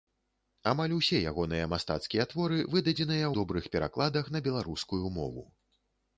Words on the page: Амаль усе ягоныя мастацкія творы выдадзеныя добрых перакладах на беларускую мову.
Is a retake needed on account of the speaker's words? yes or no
no